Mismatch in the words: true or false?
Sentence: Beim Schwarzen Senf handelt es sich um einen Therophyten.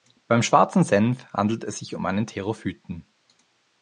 false